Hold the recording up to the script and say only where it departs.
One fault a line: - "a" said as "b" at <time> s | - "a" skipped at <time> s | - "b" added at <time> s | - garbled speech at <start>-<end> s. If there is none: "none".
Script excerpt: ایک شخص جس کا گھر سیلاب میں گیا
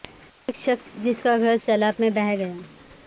- "بہہ" added at 2.1 s